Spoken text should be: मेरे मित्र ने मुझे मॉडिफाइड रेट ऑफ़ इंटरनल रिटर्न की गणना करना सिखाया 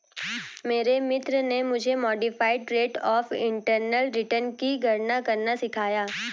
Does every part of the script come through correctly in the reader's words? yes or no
yes